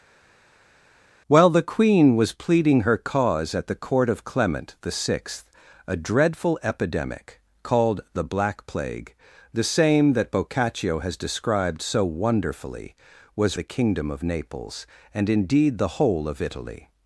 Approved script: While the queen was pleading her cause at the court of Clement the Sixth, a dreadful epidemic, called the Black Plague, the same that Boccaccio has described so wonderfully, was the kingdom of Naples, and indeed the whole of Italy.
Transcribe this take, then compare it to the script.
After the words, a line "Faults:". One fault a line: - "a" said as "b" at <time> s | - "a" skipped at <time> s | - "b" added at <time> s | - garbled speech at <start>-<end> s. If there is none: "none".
While the queen was pleading her cause at the court of Clement the Sixth, a dreadful epidemic, called the Black Plague, the same that Boccaccio has described so wonderfully, was the kingdom of Naples, and indeed the whole of Italy.
Faults:
none